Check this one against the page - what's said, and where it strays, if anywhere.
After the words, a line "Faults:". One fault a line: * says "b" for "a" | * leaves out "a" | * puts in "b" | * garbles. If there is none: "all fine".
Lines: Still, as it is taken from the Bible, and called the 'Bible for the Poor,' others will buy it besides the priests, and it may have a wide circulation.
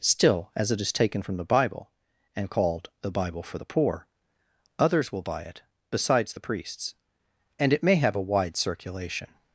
Still, as it is taken from the Bible, and called the 'Bible for the Poor,' others will buy it besides the priests, and it may have a wide circulation.
Faults:
all fine